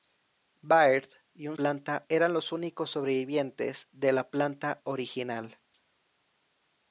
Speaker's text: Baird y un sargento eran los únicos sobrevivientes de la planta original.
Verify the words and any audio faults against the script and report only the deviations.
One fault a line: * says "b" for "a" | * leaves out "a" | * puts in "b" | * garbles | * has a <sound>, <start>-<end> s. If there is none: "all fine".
* says "planta" for "sargento"